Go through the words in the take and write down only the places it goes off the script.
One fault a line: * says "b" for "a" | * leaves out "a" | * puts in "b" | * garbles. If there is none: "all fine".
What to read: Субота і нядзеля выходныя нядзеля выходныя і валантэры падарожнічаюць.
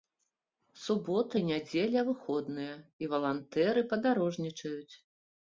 * leaves out "нядзеля выходныя"